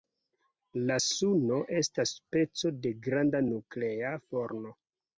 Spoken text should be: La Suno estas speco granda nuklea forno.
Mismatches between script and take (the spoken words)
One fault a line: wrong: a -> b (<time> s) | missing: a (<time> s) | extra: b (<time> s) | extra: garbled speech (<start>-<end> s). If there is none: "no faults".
extra: de (2.8 s)